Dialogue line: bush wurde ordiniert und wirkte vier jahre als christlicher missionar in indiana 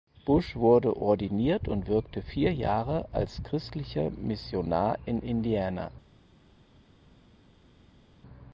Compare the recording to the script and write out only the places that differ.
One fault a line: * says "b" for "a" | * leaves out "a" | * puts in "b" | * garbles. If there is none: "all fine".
all fine